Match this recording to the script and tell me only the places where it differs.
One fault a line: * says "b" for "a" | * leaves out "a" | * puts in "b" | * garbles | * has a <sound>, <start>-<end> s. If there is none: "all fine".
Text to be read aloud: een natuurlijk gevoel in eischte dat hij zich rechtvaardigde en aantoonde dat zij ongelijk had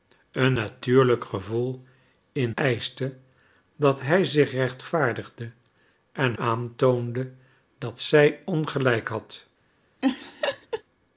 * has a laugh, 10.0-10.8 s